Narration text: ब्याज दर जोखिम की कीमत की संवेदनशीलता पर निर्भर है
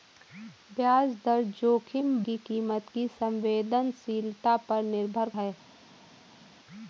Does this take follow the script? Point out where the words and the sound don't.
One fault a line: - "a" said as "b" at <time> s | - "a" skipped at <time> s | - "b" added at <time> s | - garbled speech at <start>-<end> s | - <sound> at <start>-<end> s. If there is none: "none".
none